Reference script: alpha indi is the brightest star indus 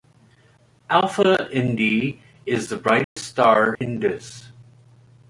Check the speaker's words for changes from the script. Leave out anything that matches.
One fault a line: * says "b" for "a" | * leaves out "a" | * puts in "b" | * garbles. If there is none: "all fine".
all fine